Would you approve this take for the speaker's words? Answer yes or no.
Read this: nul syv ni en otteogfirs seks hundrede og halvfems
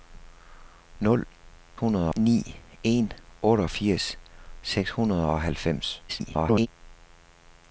no